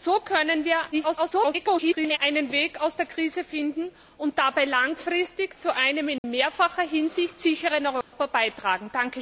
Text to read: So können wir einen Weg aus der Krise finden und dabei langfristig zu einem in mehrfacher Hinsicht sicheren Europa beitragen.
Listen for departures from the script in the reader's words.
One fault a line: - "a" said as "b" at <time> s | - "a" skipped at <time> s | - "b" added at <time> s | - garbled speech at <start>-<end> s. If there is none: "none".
- garbled speech at 0.9-2.2 s